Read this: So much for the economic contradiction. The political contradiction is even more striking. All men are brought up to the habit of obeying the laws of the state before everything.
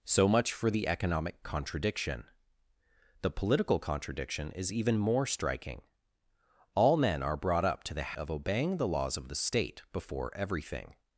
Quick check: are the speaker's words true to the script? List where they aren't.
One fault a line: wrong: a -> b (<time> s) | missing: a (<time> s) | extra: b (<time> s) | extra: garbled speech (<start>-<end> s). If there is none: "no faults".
missing: habit (8.2 s)